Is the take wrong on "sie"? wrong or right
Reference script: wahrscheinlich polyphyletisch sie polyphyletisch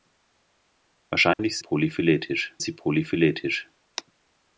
right